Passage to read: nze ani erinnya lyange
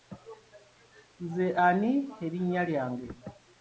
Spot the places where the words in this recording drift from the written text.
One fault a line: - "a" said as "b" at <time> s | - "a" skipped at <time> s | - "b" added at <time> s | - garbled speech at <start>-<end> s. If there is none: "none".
none